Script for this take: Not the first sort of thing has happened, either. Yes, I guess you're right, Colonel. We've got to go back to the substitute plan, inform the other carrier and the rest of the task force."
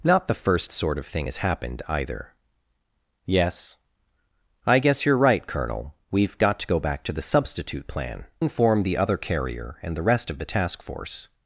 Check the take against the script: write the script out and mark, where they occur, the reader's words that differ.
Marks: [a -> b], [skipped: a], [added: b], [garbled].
Not the first sort of thing has happened, either. Yes, I guess you're right, Colonel. We've got to go back to the substitute plan, inform the other carrier and the rest of the task force."